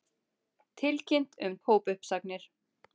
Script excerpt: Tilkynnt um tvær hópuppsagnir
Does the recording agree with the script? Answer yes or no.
no